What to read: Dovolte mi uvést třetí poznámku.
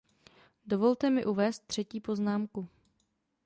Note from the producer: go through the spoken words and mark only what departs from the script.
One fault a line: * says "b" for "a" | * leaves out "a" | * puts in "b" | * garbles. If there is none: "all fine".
all fine